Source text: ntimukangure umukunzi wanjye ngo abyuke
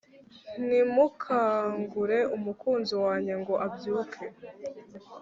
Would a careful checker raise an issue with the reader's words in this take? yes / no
no